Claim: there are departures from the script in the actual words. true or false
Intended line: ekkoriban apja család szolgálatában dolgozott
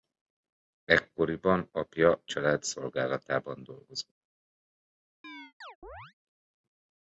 false